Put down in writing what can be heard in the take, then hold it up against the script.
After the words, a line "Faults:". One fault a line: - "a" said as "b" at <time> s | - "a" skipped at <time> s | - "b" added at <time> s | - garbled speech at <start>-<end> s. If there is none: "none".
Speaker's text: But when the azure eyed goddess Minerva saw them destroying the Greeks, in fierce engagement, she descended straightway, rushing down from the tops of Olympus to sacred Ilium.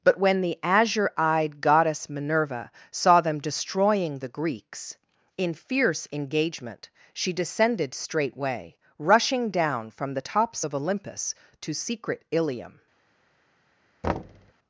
But when the azure eyed goddess Minerva saw them destroying the Greeks, in fierce engagement, she descended straightway, rushing down from the tops of Olympus to secret Ilium.
Faults:
- "sacred" said as "secret" at 11.7 s